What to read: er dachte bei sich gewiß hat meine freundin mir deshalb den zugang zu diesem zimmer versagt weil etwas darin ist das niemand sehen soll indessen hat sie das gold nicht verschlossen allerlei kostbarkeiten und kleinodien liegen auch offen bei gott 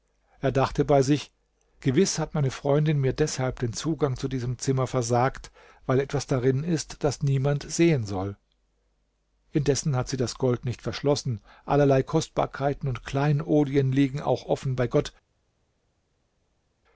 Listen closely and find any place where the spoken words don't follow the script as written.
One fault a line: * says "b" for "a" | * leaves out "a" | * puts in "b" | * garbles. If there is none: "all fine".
all fine